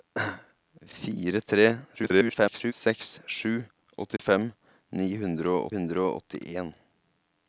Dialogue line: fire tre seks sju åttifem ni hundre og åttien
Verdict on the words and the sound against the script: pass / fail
fail